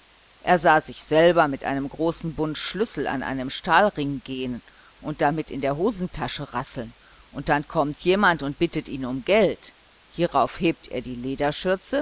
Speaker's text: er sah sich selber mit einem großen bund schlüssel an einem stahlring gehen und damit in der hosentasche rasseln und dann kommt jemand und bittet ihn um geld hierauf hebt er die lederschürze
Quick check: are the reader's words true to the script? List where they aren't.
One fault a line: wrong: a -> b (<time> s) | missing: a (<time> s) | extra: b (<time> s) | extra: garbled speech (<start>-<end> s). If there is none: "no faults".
no faults